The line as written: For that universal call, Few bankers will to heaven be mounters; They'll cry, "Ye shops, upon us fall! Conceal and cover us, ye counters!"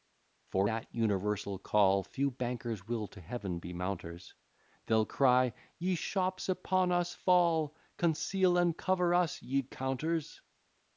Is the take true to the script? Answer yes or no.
yes